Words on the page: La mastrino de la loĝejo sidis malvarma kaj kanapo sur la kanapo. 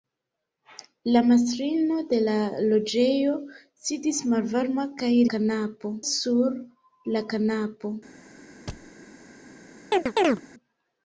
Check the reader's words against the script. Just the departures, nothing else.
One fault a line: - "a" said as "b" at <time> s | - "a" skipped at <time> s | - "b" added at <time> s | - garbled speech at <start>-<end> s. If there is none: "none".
none